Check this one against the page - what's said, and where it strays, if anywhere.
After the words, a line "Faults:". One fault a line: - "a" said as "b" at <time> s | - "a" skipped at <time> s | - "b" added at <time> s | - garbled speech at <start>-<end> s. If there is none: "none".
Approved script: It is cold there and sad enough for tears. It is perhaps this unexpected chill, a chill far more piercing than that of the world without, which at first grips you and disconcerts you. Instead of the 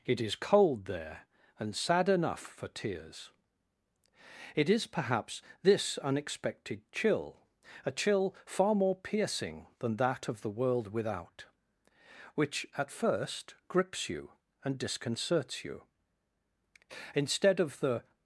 It is cold there and sad enough for tears. It is perhaps this unexpected chill, a chill far more piercing than that of the world without, which at first grips you and disconcerts you. Instead of the
Faults:
none